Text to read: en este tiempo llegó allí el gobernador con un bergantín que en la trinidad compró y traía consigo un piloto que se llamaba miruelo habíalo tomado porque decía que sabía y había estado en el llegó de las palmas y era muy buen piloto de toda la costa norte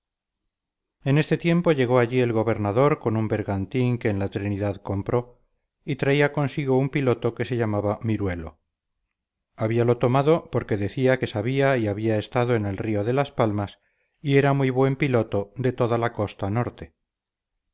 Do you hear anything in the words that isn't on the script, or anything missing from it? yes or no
yes